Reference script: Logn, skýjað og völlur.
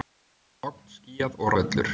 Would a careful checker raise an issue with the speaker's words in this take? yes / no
no